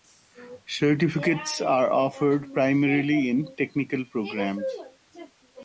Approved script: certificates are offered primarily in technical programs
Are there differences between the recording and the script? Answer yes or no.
no